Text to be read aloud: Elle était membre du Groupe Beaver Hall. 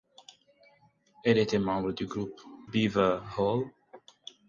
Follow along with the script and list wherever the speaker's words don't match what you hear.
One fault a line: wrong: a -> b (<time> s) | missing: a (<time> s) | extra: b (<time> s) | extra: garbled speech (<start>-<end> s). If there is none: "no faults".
no faults